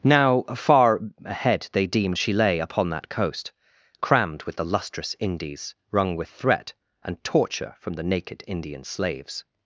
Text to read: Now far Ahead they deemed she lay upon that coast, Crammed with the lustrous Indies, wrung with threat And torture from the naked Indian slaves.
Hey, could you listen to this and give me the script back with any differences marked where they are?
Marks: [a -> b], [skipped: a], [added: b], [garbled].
Now far Ahead they deemed she lay upon that coast, Crammed with the lustrous Indies, wrung with threat And torture from the naked Indian slaves.